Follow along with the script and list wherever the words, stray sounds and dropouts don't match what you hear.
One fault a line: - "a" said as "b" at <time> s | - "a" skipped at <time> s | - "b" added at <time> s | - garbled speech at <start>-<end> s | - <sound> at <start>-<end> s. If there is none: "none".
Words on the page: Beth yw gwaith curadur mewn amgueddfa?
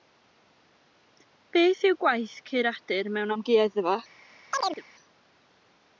- chirp at 4.5-4.8 s